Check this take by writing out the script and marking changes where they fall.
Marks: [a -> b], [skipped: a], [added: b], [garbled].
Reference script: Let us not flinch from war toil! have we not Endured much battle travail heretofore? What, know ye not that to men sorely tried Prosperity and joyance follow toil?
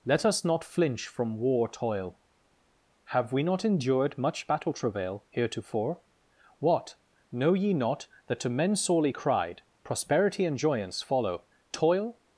Let us not flinch from war toil! have we not Endured much battle travail heretofore? What, know ye not that to men sorely [tried -> cried] Prosperity and joyance follow toil?